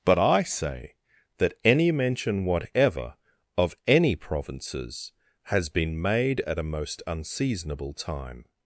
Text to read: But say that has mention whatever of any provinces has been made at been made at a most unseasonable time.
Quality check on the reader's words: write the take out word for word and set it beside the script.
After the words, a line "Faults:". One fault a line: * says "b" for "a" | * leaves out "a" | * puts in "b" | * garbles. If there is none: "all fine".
But I say that any mention whatever of any provinces has been made at a most unseasonable time.
Faults:
* puts in "I"
* says "any" for "has"
* leaves out "been made at"